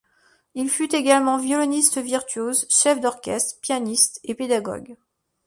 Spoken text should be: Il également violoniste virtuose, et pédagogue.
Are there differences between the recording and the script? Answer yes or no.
yes